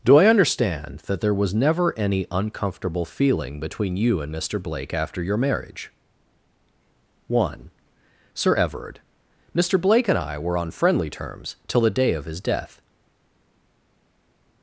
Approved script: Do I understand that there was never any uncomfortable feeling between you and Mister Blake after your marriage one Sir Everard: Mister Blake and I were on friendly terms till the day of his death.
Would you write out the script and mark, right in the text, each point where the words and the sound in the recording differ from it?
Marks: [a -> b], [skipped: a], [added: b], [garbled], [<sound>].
Do I understand that there was never any uncomfortable feeling between you and Mister Blake after your marriage one Sir Everard: Mister Blake and I were on friendly terms till the day of his death.